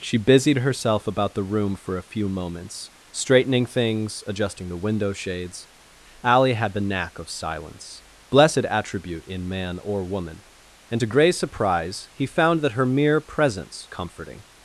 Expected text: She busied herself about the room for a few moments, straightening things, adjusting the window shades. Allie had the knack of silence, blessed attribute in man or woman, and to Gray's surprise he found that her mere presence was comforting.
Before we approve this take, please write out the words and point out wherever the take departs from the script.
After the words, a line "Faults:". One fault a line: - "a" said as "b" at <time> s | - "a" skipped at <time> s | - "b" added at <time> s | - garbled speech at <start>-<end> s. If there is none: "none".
She busied herself about the room for a few moments, straightening things, adjusting the window shades. Allie had the knack of silence, blessed attribute in man or woman, and to Gray's surprise he found that her mere presence comforting.
Faults:
- "was" skipped at 13.9 s